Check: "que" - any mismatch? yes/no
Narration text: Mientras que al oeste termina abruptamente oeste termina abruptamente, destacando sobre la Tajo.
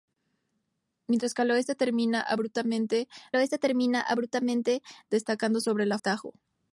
no